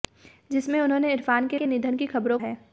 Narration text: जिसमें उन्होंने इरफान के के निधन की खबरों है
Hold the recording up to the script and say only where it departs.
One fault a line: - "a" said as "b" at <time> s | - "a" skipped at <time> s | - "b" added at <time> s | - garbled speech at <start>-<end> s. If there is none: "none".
none